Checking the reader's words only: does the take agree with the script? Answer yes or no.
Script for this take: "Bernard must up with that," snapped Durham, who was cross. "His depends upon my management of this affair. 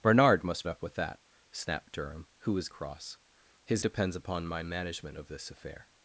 yes